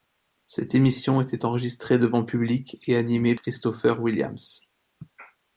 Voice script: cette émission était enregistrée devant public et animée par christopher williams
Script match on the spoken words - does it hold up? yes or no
no